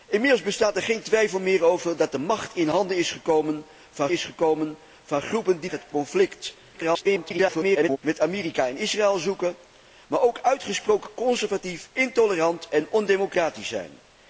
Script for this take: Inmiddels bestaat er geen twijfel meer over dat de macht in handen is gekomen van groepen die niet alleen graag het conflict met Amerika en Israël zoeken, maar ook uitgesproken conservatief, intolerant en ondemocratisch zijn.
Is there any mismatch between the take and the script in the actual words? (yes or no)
yes